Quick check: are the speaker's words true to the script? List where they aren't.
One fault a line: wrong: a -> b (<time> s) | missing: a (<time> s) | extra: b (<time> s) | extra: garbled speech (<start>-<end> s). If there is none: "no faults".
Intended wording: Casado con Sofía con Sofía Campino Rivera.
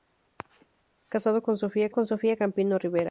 no faults